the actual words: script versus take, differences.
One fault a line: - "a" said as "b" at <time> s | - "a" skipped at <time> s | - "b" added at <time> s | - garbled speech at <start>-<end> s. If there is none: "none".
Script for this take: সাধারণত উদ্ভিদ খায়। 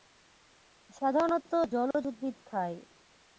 - "জলজ" added at 1.7 s